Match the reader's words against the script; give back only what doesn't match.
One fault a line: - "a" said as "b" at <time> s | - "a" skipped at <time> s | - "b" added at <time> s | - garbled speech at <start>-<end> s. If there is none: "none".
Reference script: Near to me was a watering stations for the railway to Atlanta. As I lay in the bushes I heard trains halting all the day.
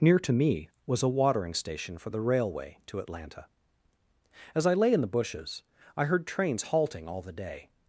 - "stations" said as "station" at 1.5 s